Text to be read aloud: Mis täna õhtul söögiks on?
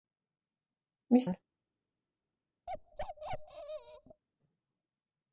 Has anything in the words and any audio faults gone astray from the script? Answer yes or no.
yes